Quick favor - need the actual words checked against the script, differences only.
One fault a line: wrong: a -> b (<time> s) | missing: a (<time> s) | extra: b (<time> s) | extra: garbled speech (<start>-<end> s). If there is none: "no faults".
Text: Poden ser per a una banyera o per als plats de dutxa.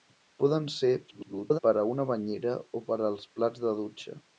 extra: garbled speech (1.1-1.6 s)